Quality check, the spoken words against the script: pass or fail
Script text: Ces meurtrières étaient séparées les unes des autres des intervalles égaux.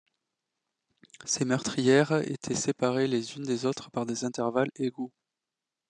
fail